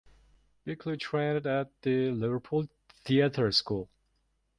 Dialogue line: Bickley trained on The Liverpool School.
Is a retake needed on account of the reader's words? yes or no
yes